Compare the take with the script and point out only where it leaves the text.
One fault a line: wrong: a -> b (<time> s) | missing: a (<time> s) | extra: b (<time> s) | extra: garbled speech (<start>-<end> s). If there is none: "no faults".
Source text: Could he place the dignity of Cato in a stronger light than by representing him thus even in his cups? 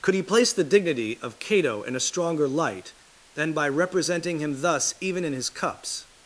no faults